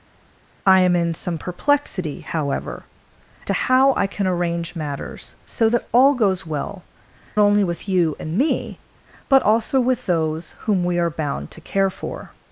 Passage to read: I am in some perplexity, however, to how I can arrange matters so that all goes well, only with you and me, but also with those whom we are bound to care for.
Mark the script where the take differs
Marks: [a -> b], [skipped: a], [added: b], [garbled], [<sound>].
I am in some perplexity, however, to how I can arrange matters so that all goes well, only with you and me, but also with those whom we are bound to care for.